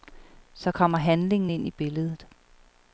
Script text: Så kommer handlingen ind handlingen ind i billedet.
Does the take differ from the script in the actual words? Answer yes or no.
yes